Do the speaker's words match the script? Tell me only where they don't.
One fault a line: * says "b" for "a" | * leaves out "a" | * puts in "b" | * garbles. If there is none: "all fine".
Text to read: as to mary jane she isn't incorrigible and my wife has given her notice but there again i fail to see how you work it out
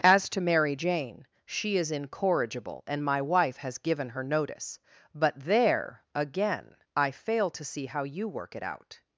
* says "is" for "isn't"